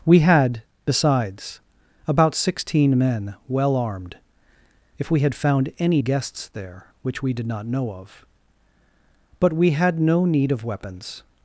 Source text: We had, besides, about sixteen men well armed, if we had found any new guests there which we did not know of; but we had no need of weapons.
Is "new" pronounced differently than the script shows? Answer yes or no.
yes